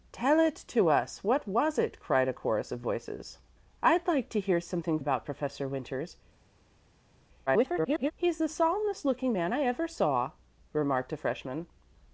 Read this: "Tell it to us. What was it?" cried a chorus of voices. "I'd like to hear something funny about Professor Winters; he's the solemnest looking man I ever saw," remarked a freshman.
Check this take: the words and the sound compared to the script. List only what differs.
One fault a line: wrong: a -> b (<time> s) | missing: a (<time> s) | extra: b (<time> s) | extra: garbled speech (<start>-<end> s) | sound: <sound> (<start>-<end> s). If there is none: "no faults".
missing: funny (5.0 s)
extra: garbled speech (7.5-8.1 s)